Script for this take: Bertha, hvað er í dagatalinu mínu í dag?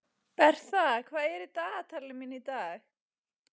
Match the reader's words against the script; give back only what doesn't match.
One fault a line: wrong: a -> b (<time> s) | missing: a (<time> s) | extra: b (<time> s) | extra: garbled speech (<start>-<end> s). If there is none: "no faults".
no faults